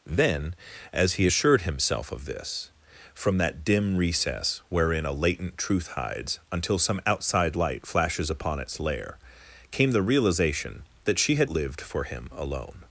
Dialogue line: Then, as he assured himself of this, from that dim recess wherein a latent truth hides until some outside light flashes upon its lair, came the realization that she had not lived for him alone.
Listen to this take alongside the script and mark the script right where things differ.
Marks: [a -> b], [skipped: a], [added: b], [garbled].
Then, as he assured himself of this, from that dim recess wherein a latent truth hides until some outside light flashes upon its lair, came the realization that she had [skipped: not] lived for him alone.